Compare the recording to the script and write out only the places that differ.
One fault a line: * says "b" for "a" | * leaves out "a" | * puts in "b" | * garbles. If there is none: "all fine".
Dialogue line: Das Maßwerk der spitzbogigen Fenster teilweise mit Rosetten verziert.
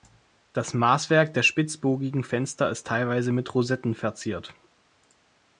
* puts in "ist"